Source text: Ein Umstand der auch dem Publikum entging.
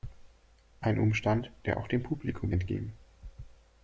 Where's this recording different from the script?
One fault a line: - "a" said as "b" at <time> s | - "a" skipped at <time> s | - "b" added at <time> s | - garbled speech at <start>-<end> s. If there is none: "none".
none